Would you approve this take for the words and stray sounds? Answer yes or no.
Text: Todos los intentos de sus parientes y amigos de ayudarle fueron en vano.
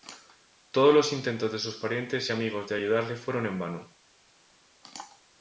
yes